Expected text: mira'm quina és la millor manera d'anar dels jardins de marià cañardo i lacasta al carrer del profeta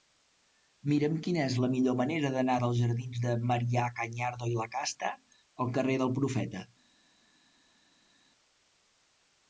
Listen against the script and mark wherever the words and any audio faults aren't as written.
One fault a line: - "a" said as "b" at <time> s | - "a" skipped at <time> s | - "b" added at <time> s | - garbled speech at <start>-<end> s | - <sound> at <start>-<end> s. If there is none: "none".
none